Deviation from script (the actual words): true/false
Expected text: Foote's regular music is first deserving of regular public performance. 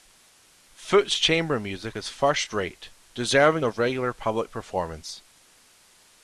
true